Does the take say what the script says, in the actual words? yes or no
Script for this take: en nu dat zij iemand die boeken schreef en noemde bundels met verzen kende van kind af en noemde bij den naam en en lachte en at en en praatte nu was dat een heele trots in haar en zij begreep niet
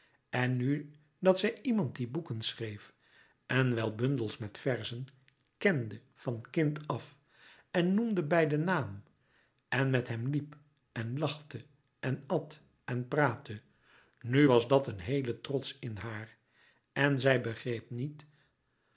no